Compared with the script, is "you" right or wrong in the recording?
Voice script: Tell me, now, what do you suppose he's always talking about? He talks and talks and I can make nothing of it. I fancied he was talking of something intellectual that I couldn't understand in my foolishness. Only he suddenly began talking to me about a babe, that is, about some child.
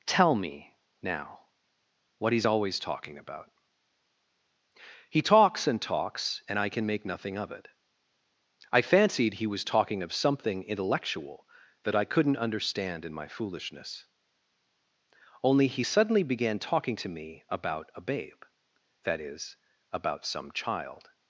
wrong